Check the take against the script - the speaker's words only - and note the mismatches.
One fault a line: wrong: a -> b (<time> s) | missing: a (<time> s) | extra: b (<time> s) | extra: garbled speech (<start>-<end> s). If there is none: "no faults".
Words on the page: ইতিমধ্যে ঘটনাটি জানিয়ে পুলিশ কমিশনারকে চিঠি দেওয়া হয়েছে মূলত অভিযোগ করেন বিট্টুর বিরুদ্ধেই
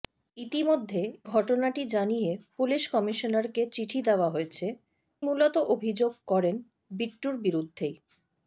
no faults